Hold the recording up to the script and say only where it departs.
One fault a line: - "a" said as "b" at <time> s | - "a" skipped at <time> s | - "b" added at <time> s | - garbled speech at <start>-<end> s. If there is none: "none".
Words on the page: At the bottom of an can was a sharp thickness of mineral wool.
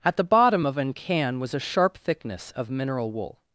none